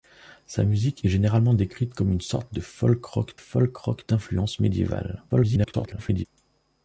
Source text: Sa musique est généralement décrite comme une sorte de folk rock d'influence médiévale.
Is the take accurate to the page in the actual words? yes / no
no